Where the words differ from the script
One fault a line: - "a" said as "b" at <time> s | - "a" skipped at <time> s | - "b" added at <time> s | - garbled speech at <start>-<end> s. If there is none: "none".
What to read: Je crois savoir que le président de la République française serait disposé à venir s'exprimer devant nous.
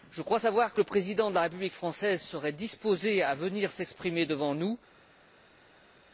none